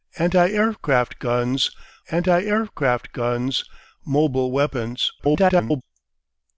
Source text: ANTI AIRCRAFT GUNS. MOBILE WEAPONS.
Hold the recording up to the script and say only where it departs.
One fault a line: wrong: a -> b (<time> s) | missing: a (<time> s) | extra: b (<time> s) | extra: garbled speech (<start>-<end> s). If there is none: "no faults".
extra: anti AIRCRAFT GUNS (2.1 s)
extra: garbled speech (5.2-5.8 s)